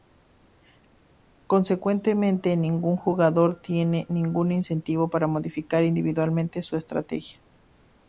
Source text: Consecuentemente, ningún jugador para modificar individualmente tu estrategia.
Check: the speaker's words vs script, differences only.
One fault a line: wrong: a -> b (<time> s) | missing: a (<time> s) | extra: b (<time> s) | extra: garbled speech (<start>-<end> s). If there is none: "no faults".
extra: tiene ningún incentivo (3.6 s)
wrong: tu -> su (6.6 s)